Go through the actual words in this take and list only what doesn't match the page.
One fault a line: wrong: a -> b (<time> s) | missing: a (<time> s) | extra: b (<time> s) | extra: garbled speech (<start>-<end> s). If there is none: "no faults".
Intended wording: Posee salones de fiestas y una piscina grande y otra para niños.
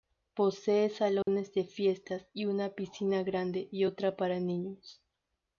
no faults